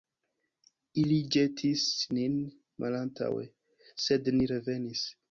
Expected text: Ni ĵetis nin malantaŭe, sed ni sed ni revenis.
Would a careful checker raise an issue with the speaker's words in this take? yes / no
yes